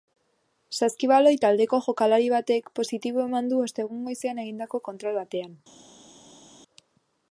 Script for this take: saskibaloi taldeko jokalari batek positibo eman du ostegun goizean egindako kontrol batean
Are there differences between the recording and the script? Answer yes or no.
no